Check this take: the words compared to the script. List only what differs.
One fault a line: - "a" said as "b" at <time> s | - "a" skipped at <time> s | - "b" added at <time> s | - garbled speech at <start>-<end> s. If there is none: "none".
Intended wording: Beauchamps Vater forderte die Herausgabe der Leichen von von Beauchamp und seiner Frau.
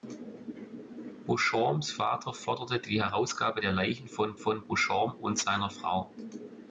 none